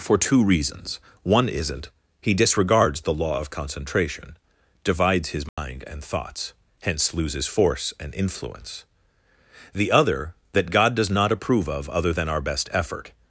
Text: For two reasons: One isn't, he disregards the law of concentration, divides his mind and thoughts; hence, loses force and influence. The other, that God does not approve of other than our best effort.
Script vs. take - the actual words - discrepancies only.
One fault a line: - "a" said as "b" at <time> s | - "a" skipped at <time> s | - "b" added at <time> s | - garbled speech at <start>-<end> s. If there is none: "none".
none